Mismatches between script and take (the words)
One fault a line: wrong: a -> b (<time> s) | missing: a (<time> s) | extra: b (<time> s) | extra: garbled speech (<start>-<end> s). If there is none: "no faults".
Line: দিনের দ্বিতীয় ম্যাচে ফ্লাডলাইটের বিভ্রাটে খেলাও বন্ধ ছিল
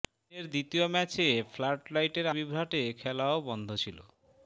no faults